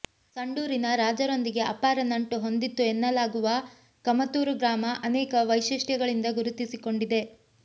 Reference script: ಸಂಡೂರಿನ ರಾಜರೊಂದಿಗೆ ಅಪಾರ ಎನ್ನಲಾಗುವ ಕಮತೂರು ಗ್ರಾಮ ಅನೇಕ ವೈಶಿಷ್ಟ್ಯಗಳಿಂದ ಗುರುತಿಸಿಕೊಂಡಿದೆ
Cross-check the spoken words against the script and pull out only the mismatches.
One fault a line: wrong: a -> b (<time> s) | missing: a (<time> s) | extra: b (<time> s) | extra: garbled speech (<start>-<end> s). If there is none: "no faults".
extra: ನಂಟು ಹೊಂದಿತ್ತು (2.0 s)